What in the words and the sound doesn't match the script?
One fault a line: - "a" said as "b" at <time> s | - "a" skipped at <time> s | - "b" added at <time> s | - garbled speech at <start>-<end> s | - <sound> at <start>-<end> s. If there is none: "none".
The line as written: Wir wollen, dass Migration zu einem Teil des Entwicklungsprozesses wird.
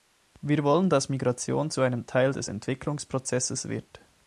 none